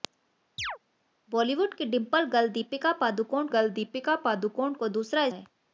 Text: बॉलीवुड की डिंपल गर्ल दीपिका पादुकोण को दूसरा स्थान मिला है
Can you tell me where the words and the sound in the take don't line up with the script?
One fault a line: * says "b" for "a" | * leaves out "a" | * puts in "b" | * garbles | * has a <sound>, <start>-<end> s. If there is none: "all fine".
* has a chirp, 0.6-0.8 s
* puts in "गर्ल दीपिका पादुकोण"
* leaves out "स्थान मिला"